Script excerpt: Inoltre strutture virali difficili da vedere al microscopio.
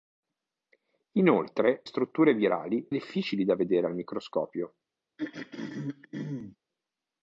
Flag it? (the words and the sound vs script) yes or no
yes